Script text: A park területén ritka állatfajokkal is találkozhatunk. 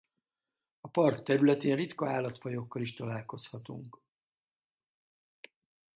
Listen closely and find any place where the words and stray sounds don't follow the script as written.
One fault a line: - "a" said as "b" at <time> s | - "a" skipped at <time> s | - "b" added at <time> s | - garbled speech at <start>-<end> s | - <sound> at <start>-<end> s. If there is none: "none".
none